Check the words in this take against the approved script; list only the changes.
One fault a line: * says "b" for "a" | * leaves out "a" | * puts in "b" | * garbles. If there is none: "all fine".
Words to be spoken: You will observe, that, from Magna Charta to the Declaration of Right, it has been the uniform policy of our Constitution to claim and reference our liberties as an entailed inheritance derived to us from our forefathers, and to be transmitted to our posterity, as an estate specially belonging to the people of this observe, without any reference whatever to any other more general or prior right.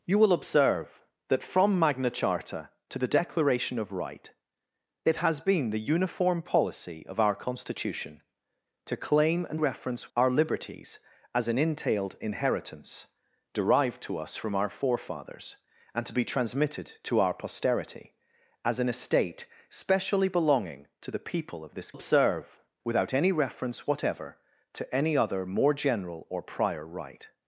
all fine